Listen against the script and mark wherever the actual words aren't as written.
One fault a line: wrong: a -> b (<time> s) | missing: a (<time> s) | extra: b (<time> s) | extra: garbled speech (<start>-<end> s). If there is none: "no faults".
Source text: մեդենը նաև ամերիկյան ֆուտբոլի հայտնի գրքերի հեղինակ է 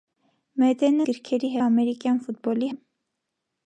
wrong: նաև -> գրքերի (1.1 s)
missing: հայտնի գրքերի հեղինակ (2.7 s)